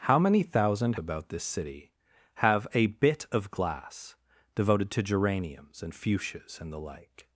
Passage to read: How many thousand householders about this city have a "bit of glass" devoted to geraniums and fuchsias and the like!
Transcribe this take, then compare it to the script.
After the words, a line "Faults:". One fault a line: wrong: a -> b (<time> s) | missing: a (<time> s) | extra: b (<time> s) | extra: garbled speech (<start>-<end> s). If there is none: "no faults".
How many thousand about this city have a "bit of glass" devoted to geraniums and fuchsias and the like!
Faults:
missing: householders (0.9 s)